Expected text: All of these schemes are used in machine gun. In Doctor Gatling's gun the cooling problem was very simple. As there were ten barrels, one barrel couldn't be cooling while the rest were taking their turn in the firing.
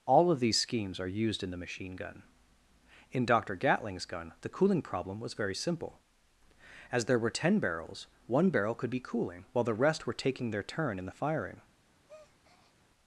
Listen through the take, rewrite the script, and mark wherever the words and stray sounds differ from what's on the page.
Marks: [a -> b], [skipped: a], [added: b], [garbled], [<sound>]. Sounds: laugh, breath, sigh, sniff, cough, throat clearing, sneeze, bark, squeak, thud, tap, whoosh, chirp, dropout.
All of these schemes are used in [added: the] machine gun. In Doctor Gatling's gun the cooling problem was very simple. As there were ten barrels, one barrel [couldn't -> could] be cooling while the rest were taking their turn in the firing. [breath]